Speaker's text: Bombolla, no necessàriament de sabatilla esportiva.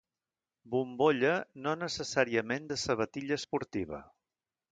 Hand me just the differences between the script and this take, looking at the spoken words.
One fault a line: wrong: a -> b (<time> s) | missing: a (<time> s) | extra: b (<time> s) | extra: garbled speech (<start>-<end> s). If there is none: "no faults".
no faults